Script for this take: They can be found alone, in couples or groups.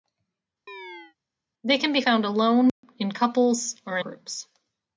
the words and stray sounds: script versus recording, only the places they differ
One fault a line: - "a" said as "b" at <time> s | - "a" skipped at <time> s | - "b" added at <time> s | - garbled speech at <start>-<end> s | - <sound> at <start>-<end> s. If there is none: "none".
- chirp at 0.7-1.2 s
- dropout at 2.7-2.8 s